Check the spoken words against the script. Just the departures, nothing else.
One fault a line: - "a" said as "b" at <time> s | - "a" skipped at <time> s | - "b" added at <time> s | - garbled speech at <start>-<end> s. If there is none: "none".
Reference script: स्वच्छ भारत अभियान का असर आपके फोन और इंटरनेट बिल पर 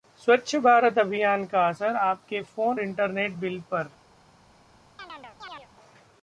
- "और" skipped at 2.8 s